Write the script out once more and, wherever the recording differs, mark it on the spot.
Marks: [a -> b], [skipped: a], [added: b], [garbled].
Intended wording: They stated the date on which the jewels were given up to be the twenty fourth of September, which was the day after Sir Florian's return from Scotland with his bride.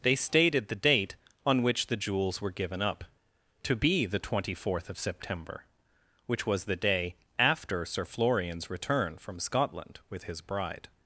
They stated the date on which the jewels were given up to be the twenty fourth of September, which was the day after Sir Florian's return from Scotland with his bride.